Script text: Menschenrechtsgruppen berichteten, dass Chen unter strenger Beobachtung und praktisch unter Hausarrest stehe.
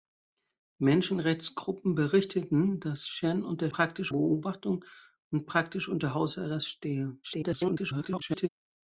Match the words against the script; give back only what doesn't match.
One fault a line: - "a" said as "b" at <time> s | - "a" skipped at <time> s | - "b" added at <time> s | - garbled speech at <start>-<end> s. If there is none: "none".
- "strenger" said as "praktisch" at 3.7 s
- garbled speech at 7.2-8.5 s